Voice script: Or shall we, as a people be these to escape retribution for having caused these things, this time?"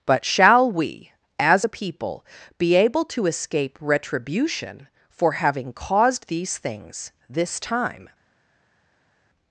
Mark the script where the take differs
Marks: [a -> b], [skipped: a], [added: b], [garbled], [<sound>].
[Or -> But] shall we, as a people be [these -> able] to escape retribution for having caused these things, this time?"